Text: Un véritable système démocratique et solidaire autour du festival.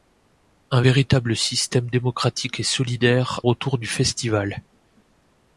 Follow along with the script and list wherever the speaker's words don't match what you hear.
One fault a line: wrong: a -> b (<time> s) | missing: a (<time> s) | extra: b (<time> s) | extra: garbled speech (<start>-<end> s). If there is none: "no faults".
no faults